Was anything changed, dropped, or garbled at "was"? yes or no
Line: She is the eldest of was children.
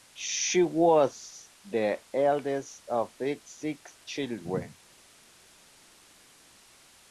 yes